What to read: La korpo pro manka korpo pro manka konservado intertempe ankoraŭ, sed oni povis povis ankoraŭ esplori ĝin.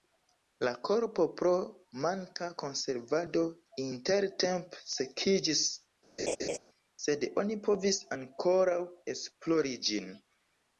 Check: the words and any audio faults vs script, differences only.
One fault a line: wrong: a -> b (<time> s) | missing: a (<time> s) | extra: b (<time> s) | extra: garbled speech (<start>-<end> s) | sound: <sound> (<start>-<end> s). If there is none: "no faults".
missing: korpo pro manka (2.5 s)
wrong: ankoraŭ -> sekiĝis (5.0 s)
sound: laugh (6.2-6.6 s)
missing: povis (8.0 s)